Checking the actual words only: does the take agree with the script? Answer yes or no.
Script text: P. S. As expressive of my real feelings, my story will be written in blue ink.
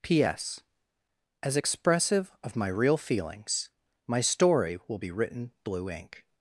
no